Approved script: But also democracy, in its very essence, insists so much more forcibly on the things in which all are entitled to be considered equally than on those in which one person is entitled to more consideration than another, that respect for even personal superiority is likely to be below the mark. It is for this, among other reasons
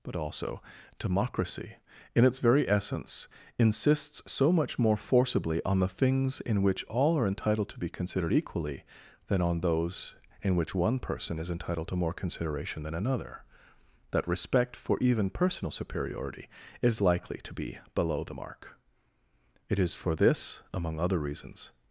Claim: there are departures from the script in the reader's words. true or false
false